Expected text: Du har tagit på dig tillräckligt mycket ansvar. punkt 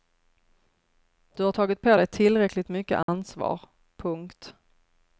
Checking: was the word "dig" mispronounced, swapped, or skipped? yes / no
no